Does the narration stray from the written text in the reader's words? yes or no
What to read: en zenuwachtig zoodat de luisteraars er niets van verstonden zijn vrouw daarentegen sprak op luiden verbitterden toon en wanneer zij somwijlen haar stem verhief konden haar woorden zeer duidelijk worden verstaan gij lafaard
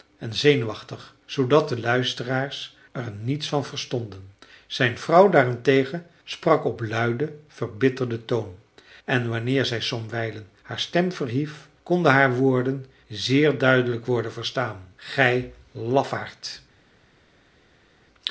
no